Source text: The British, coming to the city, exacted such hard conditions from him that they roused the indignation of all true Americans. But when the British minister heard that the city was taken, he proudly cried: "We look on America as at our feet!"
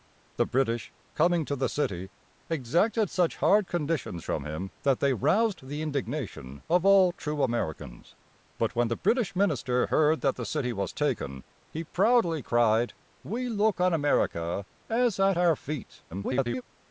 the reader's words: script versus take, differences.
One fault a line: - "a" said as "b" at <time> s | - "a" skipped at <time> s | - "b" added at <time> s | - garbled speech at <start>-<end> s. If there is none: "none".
- garbled speech at 16.1-16.6 s